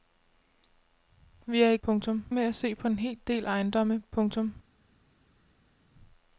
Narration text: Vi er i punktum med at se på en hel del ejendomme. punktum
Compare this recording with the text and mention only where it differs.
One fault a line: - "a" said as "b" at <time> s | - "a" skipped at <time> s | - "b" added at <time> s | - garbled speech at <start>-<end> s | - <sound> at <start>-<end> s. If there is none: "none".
none